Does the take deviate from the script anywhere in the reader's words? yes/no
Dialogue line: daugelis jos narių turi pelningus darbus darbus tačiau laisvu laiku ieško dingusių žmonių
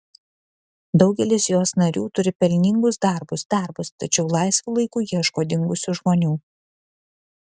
no